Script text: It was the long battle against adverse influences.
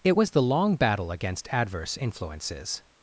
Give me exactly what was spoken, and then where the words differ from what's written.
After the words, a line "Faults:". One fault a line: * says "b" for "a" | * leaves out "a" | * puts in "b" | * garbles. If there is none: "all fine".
It was the long battle against adverse influences.
Faults:
all fine